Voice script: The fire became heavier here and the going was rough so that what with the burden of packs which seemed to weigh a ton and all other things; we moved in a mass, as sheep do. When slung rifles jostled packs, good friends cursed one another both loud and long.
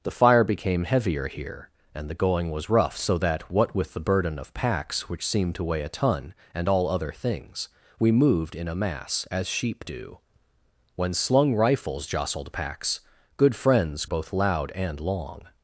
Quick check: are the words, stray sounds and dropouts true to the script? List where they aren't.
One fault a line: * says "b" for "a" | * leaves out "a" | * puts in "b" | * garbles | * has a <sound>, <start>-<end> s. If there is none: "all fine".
* leaves out "cursed one another"